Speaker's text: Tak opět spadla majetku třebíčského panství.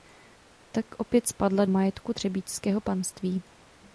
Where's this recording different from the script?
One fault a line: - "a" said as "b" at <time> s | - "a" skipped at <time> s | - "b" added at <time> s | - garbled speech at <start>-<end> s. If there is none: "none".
none